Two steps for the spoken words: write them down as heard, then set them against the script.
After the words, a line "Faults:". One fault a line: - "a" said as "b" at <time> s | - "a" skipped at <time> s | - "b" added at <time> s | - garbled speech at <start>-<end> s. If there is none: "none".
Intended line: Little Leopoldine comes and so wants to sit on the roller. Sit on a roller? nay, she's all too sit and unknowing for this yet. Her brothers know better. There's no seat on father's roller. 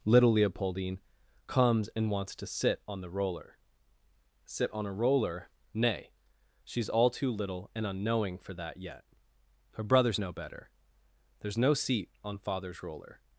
Little Leopoldine comes and wants to sit on the roller. Sit on a roller? nay, she's all too little and unknowing for that yet. Her brothers know better. There's no seat on father's roller.
Faults:
- "so" skipped at 2.1 s
- "sit" said as "little" at 7.3 s
- "this" said as "that" at 8.5 s